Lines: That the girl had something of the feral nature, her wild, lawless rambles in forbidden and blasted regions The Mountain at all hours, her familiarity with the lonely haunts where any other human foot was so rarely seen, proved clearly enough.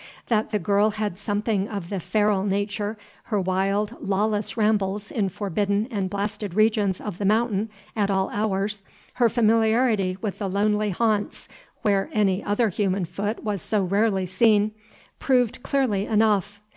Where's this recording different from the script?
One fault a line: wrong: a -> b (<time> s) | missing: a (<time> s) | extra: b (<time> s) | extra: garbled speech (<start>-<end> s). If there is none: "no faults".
extra: of (7.0 s)